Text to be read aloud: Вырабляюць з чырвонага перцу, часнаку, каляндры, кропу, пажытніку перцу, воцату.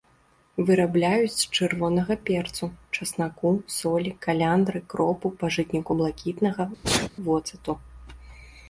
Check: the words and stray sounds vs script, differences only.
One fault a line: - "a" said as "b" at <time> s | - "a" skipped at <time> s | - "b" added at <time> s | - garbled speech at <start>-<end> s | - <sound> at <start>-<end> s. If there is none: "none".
- "солі" added at 3.8 s
- "перцу" said as "блакітнага" at 6.0 s
- sneeze at 6.8-7.1 s